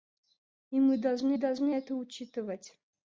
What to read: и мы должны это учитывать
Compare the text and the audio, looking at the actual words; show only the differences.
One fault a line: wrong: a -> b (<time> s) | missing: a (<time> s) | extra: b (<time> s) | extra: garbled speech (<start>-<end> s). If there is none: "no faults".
extra: должны (1.4 s)